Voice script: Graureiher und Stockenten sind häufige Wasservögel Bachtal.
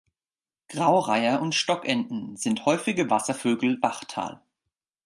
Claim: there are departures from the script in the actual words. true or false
false